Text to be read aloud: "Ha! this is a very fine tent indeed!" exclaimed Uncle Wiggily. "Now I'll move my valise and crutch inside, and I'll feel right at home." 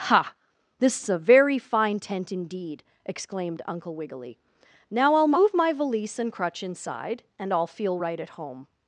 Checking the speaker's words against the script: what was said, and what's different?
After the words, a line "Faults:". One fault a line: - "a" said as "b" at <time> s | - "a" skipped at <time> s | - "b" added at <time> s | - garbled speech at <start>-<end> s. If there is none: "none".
"Ha! this is a very fine tent indeed!" exclaimed Uncle Wiggily. "Now I'll move my valise and crutch inside, and I'll feel right at home."
Faults:
none